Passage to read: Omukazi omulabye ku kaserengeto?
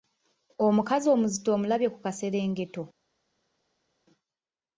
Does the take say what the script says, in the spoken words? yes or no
no